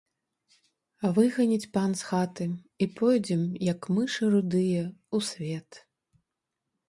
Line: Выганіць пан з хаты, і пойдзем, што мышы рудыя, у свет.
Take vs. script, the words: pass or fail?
fail